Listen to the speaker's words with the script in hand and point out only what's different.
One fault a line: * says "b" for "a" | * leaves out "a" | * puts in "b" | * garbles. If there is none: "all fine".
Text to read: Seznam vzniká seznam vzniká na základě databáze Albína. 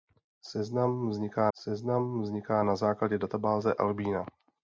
all fine